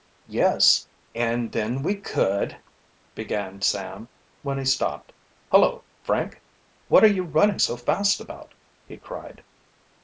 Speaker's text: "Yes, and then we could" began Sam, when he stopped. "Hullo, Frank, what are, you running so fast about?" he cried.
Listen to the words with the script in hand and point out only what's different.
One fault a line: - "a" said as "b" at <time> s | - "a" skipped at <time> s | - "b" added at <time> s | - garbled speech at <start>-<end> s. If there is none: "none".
none